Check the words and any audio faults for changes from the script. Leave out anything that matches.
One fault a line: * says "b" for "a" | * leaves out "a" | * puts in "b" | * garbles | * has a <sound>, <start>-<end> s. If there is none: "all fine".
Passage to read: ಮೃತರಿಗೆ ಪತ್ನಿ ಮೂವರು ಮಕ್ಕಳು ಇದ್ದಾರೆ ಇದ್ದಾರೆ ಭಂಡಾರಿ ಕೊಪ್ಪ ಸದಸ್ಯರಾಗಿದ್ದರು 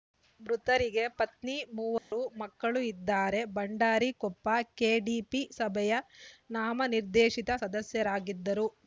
* has a dropout, 2.0-2.1 s
* leaves out "ಇದ್ದಾರೆ"
* puts in "ಕೆಡಿಪಿ ಸಭೆಯ ನಾಮನಿರ್ದೇಶಿತ"